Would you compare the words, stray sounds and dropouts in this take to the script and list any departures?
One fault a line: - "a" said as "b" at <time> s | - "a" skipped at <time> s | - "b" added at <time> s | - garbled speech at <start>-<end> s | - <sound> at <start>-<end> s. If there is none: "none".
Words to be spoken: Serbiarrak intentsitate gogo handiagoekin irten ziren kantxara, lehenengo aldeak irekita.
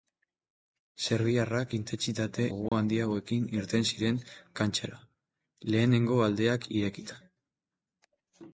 - dropout at 2.7-2.7 s